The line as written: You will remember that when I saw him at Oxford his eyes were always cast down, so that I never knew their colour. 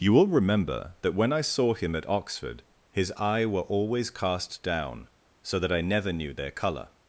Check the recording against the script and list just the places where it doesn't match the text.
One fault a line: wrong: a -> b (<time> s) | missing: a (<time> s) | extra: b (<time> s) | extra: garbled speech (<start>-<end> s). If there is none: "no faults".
wrong: eyes -> eye (3.2 s)